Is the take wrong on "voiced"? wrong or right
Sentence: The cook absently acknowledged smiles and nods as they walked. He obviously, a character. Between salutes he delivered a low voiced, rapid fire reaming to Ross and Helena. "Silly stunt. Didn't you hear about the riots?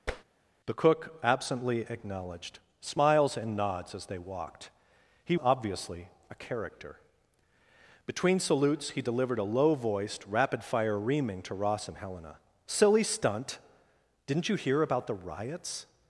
right